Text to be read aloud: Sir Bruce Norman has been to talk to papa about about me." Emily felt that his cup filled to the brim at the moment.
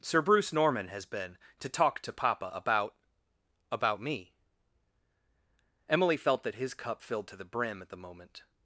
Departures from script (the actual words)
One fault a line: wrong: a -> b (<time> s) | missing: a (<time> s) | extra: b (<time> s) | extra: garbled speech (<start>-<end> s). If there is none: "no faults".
no faults